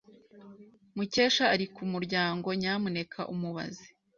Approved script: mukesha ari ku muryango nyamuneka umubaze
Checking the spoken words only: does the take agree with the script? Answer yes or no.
yes